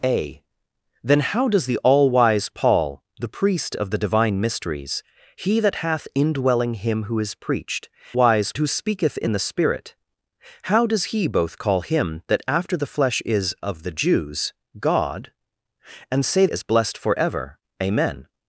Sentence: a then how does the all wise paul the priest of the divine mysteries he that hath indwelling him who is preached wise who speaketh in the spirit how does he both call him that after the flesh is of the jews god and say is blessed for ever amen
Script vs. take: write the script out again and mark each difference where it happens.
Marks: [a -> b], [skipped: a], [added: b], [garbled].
a then how does the all wise paul the priest of the divine mysteries he that hath indwelling him who is preached wise who speaketh in the spirit how does he both call him that after the flesh is of the jews god and say is blessed for ever amen